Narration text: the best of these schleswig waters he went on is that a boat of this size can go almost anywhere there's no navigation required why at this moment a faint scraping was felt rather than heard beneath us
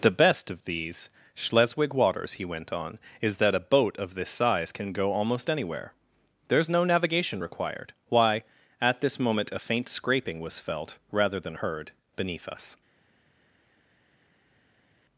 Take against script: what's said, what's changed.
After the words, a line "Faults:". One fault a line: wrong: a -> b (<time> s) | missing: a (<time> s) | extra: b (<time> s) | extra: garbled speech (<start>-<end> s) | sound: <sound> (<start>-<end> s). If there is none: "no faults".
the best of these schleswig waters he went on is that a boat of this size can go almost anywhere there's no navigation required why at this moment a faint scraping was felt rather than heard beneath us
Faults:
no faults